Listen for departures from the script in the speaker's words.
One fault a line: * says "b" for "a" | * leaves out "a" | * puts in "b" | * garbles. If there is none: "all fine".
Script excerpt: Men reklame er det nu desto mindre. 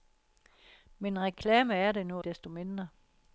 all fine